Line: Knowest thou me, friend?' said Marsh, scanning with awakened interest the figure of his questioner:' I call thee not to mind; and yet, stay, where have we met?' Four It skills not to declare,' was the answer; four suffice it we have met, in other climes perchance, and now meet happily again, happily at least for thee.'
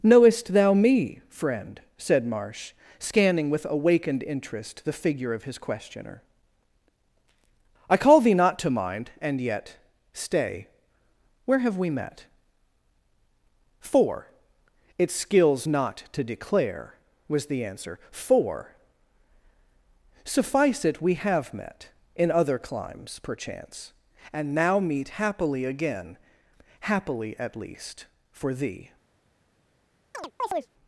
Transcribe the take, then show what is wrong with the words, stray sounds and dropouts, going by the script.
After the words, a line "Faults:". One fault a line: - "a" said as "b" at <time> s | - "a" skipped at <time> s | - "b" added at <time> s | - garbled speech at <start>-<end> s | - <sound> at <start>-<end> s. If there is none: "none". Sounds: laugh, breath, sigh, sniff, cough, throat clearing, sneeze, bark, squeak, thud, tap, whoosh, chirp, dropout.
Knowest thou me, friend?' said Marsh, scanning with awakened interest the figure of his questioner:' I call thee not to mind; and yet, stay, where have we met?' Four It skills not to declare,' was the answer; four suffice it we have met, in other climes perchance, and now meet happily again, happily at least for thee.'
Faults:
- chirp at 30.1-30.7 s